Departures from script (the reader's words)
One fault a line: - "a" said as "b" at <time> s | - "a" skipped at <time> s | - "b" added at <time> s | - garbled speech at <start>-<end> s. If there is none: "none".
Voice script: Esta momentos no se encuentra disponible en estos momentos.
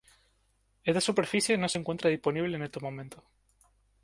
- "momentos" said as "superficie" at 1.0 s